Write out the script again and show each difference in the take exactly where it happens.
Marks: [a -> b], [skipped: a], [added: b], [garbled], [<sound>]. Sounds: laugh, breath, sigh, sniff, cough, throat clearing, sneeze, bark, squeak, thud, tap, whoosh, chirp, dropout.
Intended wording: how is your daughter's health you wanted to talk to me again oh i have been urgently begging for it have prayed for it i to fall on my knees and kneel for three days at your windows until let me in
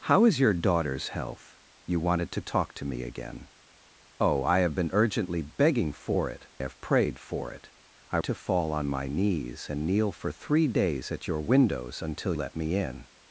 how is your daughter's health you wanted to talk to me again oh i have been urgently begging for it have prayed for it i to fall on my knees and kneel for three days at your windows until let me in